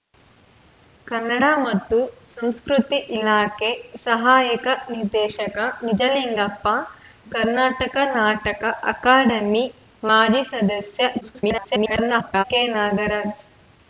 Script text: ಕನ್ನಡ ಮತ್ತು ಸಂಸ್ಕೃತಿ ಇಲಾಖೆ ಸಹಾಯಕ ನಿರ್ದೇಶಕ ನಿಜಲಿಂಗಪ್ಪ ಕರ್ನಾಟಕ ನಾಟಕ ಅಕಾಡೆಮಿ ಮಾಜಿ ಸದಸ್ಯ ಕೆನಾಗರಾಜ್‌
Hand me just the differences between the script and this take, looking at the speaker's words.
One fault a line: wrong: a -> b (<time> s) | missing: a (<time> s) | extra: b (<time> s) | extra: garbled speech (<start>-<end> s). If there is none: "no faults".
extra: garbled speech (11.2-12.4 s)